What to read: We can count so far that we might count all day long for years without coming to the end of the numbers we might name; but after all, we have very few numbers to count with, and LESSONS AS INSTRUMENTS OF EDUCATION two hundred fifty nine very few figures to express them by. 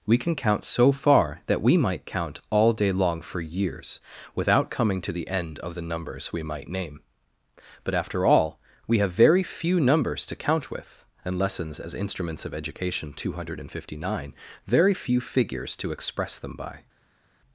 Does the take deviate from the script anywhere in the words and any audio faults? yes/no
no